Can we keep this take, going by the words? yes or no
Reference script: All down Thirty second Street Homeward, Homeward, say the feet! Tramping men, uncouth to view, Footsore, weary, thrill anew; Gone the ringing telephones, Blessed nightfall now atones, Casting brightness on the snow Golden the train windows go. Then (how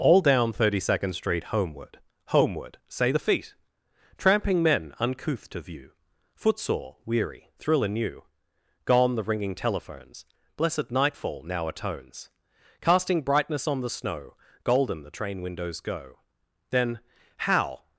yes